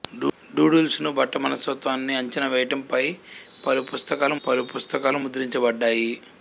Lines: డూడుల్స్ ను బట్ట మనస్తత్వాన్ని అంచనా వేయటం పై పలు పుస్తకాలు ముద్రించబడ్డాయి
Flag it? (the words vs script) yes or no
yes